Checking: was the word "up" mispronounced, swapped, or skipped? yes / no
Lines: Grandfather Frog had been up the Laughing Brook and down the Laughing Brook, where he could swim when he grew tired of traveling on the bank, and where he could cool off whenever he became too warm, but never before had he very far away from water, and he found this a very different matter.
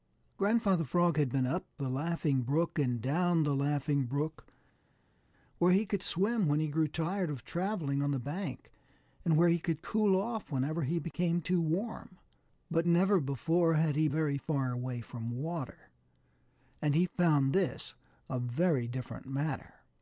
no